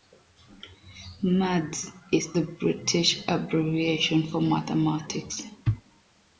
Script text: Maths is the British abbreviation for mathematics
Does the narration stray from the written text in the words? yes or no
no